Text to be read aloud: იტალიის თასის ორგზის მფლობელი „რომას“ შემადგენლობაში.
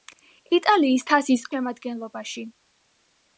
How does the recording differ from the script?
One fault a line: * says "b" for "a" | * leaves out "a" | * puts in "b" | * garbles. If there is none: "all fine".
* leaves out "ორგზის მფლობელი რომას"